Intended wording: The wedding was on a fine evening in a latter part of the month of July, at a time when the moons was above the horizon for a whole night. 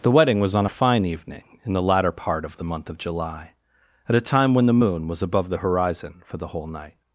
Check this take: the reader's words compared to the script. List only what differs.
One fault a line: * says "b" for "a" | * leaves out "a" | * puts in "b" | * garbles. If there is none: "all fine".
* says "the" for "a"
* says "moon" for "moons"
* says "the" for "a"